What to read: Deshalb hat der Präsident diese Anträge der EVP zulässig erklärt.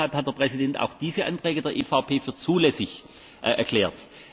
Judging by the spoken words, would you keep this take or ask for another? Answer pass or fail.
fail